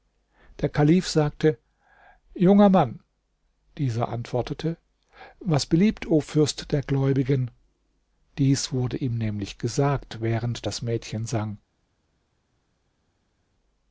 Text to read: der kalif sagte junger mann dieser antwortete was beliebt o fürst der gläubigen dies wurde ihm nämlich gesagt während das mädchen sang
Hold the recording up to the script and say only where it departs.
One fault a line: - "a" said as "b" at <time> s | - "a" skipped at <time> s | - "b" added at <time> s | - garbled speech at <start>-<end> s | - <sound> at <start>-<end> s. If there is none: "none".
none